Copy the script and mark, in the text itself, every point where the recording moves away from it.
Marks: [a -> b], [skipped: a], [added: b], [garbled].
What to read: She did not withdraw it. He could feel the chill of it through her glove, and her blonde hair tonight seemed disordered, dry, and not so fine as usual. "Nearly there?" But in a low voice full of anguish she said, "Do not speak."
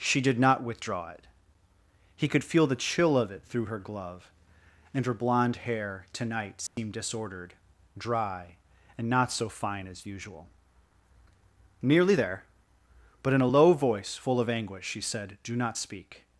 She did not withdraw it. He could feel the chill of it through her glove, and her blonde hair tonight seemed disordered, dry, and not so fine as usual. "Nearly there?" But in a low voice full of anguish she said, "Do not speak."